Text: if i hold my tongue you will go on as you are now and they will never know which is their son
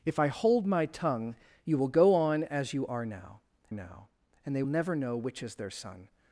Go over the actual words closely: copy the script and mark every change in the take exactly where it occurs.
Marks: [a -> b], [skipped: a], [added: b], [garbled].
if i hold my tongue you will go on as you are now [added: now] and they [skipped: will] never know which is their son